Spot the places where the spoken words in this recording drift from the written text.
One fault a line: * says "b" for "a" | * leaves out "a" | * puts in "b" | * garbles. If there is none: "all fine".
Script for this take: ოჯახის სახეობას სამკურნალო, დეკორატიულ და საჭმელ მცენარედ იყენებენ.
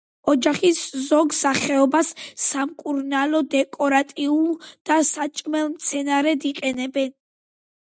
* puts in "ზოგ"